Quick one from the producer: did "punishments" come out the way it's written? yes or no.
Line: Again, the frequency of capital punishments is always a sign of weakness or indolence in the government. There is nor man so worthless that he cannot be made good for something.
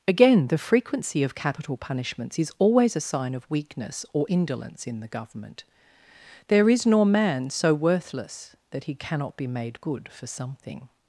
yes